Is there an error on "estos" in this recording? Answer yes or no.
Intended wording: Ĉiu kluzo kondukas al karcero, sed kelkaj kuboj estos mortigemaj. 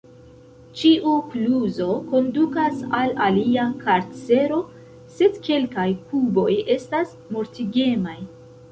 yes